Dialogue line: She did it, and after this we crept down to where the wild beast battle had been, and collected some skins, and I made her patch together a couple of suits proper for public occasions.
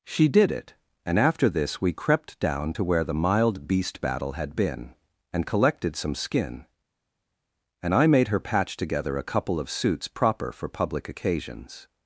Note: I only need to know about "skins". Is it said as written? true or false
false